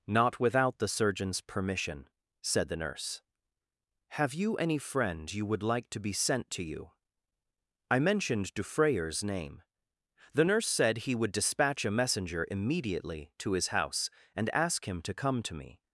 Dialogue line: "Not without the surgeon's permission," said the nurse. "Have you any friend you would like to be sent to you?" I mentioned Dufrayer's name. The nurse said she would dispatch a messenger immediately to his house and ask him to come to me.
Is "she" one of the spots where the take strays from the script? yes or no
yes